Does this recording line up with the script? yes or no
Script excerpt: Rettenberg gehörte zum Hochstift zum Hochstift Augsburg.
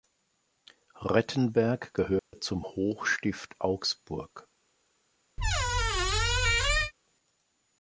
no